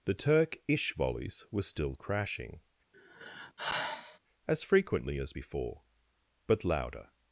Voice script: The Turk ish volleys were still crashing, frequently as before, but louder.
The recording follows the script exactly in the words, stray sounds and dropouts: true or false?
false